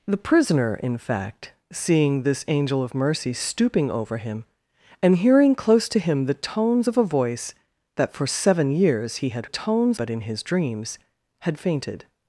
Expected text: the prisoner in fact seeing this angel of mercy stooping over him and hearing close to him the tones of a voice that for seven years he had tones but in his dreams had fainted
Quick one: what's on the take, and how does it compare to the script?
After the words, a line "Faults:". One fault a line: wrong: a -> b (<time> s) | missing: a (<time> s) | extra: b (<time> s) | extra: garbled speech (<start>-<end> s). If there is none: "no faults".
the prisoner in fact seeing this angel of mercy stooping over him and hearing close to him the tones of a voice that for seven years he had tones but in his dreams had fainted
Faults:
no faults